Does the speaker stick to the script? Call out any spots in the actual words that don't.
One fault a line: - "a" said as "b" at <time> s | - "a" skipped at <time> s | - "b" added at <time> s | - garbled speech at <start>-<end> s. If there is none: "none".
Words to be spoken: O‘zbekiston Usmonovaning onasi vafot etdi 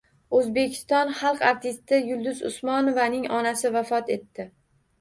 - "xalq artisti Yulduz" added at 1.2 s